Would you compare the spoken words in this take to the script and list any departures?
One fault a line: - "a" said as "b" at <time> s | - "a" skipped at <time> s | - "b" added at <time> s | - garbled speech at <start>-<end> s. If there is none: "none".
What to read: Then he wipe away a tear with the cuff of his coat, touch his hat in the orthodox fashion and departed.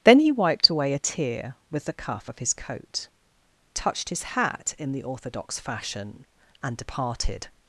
- "wipe" said as "wiped" at 0.3 s
- "touch" said as "touched" at 3.7 s